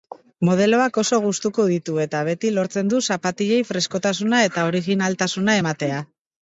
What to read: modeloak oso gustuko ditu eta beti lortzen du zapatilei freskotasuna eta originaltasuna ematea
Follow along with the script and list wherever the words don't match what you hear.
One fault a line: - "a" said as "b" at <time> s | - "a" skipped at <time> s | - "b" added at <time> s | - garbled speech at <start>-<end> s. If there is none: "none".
none